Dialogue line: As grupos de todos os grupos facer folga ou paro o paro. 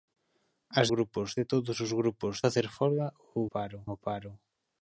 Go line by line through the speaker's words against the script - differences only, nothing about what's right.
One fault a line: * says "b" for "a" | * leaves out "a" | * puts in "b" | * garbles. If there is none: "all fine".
all fine